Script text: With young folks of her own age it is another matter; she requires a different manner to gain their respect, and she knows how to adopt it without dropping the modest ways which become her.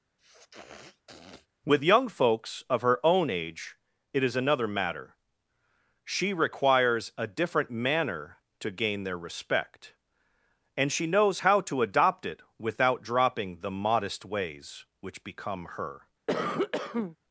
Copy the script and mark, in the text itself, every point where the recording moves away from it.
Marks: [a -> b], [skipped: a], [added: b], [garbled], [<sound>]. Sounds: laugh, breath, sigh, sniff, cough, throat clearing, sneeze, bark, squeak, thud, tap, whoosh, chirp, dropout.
[sniff] With young folks of her own age it is another matter; she requires a different manner to gain their respect, and she knows how to adopt it without dropping the modest ways which become her. [cough]